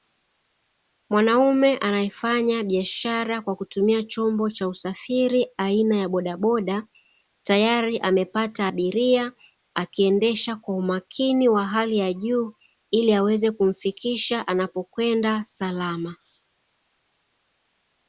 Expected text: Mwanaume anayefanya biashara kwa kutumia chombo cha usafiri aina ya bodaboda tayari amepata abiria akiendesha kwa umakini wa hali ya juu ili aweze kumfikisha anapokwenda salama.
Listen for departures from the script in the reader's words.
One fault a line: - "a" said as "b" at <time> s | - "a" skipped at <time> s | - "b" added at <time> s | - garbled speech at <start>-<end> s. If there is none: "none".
none